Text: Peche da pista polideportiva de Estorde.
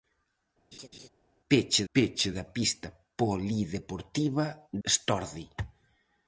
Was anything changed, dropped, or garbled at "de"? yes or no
yes